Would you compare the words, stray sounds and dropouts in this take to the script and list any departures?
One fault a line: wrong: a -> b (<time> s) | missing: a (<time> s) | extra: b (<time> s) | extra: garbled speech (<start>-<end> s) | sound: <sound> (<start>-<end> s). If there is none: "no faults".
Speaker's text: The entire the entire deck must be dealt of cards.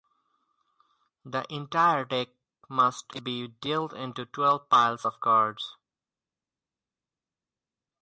missing: the entire (2.0 s)
extra: into twelve piles (3.9 s)